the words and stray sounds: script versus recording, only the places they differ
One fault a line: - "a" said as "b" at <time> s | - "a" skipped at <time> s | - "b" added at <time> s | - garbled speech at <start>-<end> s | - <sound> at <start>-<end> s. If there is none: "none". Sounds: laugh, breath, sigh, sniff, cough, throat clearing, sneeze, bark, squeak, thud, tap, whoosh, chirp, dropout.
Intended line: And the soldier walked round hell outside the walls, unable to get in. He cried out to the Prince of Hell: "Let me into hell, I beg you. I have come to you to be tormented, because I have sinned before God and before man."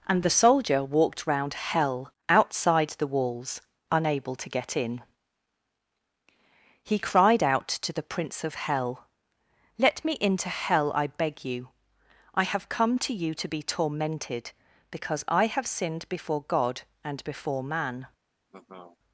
- laugh at 18.5-19.0 s